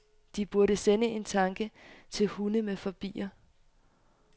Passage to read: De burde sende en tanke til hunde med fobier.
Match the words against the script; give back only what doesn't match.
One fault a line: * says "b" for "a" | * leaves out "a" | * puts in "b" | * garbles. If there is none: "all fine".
all fine